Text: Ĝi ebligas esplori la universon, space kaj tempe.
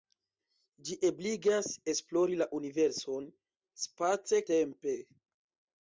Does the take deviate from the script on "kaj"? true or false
true